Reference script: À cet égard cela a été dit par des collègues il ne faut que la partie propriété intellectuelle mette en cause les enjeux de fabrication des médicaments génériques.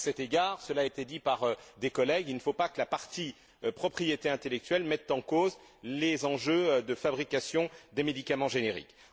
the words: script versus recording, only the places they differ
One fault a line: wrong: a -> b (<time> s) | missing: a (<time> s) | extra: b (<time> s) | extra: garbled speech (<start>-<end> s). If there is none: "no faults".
extra: pas (2.5 s)